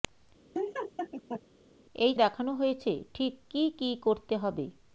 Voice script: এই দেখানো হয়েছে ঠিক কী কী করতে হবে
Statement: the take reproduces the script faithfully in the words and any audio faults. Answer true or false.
false